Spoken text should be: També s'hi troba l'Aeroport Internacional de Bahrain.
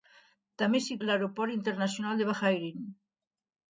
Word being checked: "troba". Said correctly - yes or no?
no